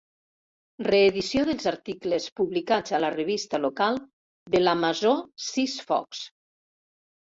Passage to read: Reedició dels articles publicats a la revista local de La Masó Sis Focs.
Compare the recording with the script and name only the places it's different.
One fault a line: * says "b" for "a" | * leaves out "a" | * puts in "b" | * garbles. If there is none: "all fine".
all fine